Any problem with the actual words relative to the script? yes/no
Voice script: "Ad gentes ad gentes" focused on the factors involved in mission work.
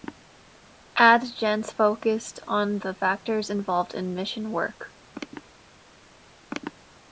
yes